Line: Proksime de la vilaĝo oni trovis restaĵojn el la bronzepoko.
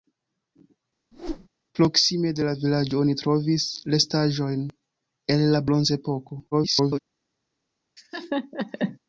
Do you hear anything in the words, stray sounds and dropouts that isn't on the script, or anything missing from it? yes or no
yes